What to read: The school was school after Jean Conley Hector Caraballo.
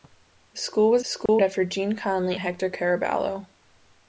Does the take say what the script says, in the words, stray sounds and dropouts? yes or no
no